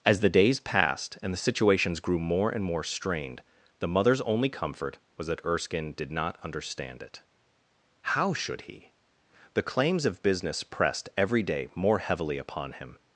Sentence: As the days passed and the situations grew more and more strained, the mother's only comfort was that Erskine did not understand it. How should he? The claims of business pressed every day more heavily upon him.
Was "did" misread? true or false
false